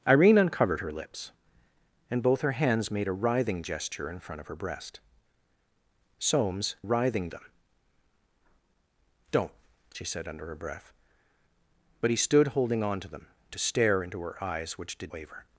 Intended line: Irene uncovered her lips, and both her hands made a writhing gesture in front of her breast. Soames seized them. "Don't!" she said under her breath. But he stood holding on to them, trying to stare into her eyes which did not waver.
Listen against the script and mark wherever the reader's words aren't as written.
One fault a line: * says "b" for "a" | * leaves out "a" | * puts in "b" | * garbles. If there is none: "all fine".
* says "writhing" for "seized"
* leaves out "trying"
* leaves out "not"